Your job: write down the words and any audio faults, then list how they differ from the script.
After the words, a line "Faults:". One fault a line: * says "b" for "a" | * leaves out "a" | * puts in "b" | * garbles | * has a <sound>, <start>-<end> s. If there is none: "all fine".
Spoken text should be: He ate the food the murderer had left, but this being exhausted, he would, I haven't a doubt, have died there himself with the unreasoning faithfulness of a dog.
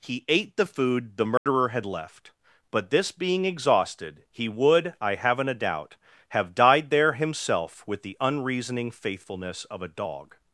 He ate the food the murderer had left, but this being exhausted, he would, I haven't a doubt, have died there himself with the unreasoning faithfulness of a dog.
Faults:
* has a dropout, 1.4-1.5 s